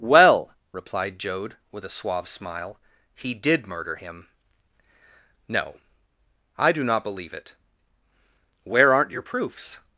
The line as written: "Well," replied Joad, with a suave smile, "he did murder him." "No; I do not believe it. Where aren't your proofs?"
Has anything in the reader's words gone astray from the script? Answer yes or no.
no